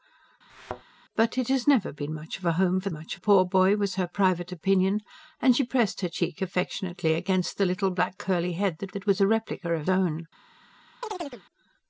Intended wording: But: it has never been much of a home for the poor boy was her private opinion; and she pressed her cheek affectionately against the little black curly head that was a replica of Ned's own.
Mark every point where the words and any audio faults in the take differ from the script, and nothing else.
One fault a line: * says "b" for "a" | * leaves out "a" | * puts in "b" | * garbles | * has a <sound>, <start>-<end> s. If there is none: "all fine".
* has a thud, 0.5-0.8 s
* says "much" for "the"
* puts in "that"
* leaves out "Ned's"
* has a chirp, 11.0-11.4 s